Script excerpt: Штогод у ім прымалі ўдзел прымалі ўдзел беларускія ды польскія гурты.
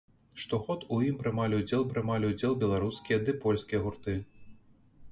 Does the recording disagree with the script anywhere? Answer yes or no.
no